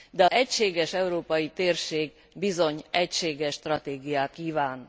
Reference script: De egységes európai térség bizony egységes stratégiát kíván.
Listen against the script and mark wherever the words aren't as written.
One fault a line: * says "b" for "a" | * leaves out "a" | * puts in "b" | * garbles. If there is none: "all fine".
all fine